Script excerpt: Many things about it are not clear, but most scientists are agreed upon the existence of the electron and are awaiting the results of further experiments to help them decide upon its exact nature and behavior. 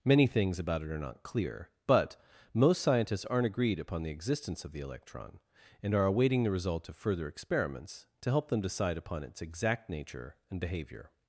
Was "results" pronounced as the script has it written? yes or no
no